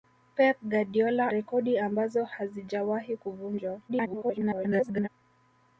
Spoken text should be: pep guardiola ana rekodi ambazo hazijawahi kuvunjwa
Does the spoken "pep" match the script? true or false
true